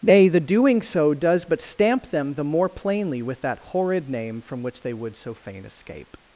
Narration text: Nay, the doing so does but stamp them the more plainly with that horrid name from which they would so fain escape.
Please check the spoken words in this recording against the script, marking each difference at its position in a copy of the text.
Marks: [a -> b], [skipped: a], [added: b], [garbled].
Nay, the doing so does but stamp them the more plainly with that horrid name from which they would so fain escape.